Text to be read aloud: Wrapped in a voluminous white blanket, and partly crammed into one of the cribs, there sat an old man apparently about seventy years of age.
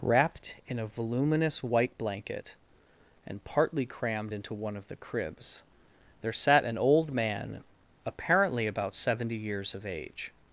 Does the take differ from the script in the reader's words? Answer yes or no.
no